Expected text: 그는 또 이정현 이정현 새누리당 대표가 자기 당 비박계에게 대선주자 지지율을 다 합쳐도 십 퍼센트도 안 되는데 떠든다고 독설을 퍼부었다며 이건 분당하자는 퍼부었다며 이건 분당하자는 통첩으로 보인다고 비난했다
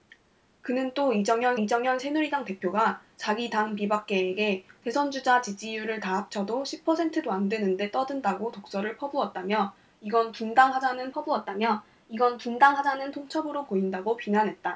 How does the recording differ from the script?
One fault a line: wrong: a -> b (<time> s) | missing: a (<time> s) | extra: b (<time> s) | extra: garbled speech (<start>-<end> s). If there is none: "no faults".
no faults